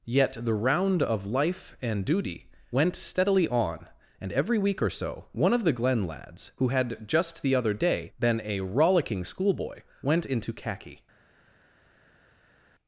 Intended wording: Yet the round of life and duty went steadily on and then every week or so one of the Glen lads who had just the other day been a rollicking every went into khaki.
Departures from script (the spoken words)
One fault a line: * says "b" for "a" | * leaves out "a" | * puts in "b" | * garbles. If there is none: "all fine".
* leaves out "then"
* says "schoolboy" for "every"